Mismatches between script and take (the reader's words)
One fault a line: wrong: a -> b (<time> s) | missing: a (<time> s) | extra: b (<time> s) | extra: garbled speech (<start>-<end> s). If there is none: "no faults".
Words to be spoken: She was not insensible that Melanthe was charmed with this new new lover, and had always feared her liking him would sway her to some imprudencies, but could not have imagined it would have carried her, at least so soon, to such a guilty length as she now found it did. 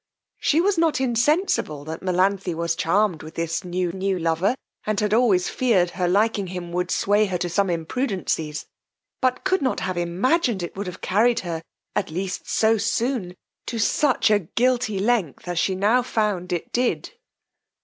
no faults